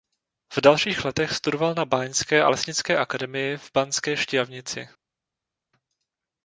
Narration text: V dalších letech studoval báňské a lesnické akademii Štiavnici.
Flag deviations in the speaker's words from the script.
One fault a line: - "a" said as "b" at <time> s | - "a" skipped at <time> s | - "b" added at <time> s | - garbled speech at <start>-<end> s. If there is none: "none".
- "na" added at 1.7 s
- "v Banské" added at 3.6 s